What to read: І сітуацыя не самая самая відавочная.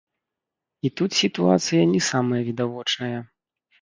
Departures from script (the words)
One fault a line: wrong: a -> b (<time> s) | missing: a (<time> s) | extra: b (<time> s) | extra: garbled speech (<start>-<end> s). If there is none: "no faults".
extra: тут (1.0 s)
missing: самая (2.4 s)